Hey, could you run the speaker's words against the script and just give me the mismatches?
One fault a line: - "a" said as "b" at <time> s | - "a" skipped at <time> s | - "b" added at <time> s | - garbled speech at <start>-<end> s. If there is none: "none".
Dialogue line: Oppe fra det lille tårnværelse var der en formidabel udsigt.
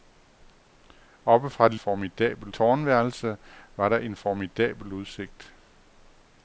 - "lille" said as "formidabel" at 1.8 s